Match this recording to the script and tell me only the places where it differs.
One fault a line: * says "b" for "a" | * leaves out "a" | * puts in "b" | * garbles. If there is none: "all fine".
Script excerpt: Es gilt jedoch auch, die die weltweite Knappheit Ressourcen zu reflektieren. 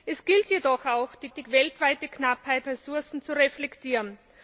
all fine